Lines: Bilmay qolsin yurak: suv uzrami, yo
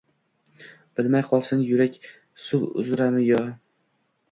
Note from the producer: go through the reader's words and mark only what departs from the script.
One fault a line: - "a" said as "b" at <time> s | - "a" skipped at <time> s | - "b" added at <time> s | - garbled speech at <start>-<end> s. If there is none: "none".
none